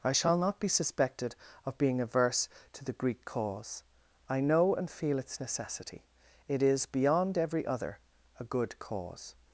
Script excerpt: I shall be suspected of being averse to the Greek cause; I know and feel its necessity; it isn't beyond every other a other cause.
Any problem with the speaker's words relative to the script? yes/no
yes